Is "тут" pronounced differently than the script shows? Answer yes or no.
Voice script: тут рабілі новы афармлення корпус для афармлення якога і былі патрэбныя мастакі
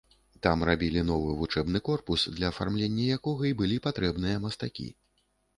yes